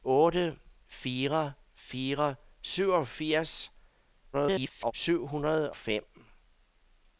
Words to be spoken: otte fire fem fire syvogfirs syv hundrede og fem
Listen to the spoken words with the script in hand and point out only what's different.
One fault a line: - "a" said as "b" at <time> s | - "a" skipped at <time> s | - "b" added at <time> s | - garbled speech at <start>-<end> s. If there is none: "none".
- "fem" skipped at 1.5 s
- garbled speech at 4.3-4.9 s
- "og" skipped at 5.7 s